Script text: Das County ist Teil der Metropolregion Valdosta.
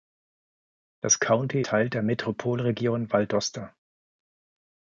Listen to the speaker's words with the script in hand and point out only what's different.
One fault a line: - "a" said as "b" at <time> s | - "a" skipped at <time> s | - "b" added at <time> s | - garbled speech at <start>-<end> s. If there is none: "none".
- "ist" skipped at 1.6 s